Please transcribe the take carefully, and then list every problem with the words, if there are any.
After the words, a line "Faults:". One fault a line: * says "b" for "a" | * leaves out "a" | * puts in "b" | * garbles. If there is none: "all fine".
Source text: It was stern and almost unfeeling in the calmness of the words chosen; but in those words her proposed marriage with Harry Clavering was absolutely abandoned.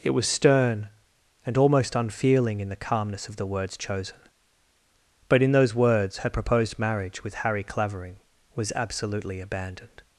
It was stern and almost unfeeling in the calmness of the words chosen; but in those words her proposed marriage with Harry Clavering was absolutely abandoned.
Faults:
all fine